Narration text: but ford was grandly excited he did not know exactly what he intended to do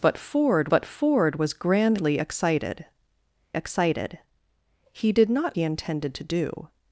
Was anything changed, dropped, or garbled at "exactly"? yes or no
yes